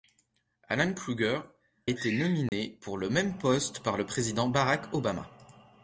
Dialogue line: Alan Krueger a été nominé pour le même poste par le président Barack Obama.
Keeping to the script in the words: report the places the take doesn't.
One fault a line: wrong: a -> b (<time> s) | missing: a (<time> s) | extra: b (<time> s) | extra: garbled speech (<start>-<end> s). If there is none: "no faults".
missing: a (1.4 s)